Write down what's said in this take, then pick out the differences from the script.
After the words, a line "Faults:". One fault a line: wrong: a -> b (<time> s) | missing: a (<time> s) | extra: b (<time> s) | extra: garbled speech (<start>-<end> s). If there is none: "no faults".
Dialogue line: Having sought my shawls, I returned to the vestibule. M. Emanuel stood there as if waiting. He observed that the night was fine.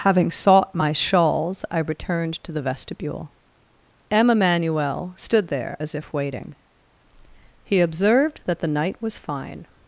Having sought my shawls, I returned to the vestibule. M. Emanuel stood there as if waiting. He observed that the night was fine.
Faults:
no faults